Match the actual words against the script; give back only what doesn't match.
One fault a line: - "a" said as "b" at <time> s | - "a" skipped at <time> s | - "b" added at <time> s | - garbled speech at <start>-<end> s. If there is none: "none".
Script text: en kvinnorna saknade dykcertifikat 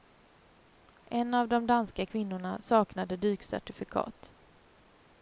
- "av de danska" added at 1.3 s